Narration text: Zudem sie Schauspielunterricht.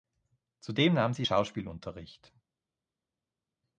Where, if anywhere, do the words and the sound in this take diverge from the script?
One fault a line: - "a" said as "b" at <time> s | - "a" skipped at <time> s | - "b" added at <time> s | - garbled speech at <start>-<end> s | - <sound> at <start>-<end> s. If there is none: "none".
- "nahm" added at 0.9 s